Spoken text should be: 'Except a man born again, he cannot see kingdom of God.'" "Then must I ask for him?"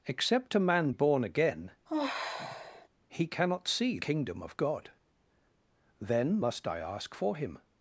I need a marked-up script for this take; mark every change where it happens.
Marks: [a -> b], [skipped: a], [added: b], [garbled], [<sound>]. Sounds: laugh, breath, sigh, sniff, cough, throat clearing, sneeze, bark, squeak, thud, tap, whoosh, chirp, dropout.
'Except a man born again, [sigh] he cannot see kingdom of God.'" "Then must I ask for him?"